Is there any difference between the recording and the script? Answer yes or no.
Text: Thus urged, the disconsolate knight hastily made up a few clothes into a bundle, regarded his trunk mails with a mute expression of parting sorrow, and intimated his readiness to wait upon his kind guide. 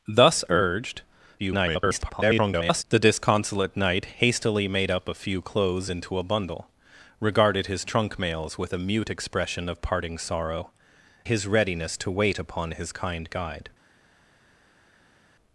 yes